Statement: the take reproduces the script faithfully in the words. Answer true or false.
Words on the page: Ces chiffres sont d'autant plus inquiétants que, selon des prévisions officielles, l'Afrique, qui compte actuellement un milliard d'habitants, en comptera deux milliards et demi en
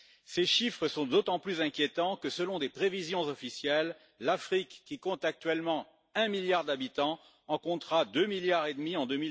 true